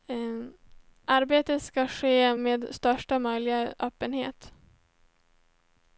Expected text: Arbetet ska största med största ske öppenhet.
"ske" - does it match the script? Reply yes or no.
no